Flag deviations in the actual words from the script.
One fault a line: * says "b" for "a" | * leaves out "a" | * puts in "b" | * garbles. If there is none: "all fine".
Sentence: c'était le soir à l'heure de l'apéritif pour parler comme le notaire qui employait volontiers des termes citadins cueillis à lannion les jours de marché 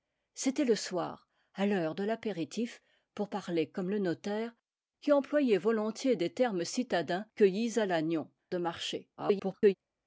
* leaves out "les jours"
* garbles